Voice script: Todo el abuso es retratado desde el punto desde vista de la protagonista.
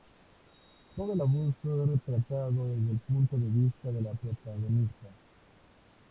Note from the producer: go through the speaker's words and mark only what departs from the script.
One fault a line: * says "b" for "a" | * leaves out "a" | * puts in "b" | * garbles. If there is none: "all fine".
* says "de" for "desde"